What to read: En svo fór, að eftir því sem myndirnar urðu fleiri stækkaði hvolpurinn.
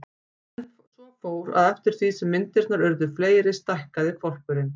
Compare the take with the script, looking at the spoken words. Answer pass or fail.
pass